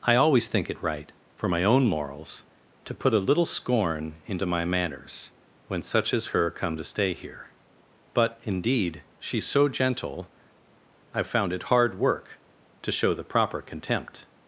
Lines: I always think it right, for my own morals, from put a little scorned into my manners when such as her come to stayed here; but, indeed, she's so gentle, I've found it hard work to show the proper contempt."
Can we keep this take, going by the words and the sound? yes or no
no